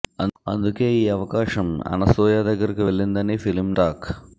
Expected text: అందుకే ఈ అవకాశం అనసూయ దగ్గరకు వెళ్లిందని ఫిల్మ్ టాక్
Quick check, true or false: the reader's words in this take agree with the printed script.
true